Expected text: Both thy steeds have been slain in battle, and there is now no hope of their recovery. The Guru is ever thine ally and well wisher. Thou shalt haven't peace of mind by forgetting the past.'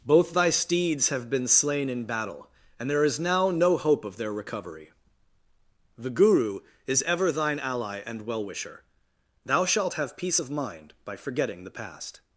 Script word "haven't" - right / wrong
wrong